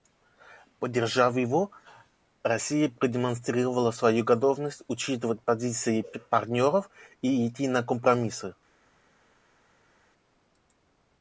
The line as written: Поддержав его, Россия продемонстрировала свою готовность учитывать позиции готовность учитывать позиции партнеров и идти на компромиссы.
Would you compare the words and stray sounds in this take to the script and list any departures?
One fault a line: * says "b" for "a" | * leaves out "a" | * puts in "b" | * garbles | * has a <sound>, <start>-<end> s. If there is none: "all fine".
* leaves out "готовность учитывать позиции"